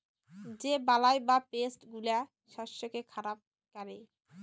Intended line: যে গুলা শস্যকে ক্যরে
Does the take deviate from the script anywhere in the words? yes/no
yes